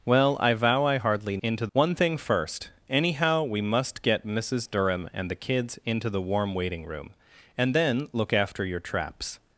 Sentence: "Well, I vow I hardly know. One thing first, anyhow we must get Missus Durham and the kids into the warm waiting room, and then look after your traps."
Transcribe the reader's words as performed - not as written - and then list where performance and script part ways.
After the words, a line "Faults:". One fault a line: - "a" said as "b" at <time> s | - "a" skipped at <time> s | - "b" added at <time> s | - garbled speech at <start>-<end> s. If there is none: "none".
"Well, I vow I hardly into. One thing first, anyhow we must get Missus Durham and the kids into the warm waiting room, and then look after your traps."
Faults:
- "know" said as "into" at 1.4 s